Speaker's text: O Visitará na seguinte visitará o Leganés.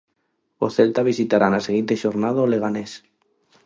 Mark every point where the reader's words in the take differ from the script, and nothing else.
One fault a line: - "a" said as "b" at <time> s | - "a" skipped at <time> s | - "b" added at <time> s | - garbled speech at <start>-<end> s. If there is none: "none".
- "Celta" added at 0.8 s
- "visitará" said as "xornada" at 2.0 s